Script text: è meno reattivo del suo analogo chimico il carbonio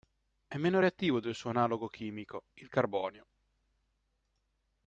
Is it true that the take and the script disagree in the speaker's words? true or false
false